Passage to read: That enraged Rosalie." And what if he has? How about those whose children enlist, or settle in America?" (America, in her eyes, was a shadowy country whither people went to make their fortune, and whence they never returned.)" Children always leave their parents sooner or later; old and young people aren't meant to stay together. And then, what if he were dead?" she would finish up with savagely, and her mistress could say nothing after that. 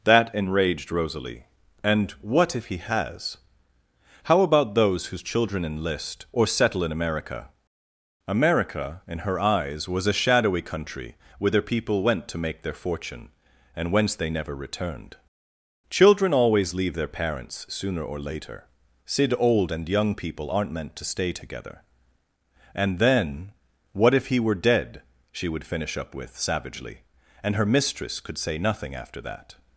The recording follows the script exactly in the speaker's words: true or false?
false